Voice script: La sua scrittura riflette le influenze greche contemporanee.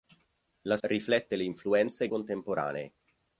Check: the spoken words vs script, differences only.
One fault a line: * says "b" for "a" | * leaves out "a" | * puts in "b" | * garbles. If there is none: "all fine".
* leaves out "sua scrittura"
* leaves out "greche"